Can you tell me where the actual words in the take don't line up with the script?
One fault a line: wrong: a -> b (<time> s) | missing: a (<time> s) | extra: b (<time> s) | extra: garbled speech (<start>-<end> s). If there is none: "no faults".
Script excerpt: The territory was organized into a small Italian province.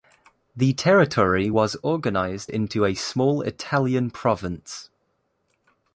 no faults